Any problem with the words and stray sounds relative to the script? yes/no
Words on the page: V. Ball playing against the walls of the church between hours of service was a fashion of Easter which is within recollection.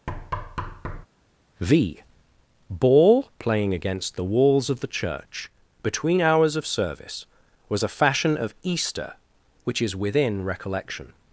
yes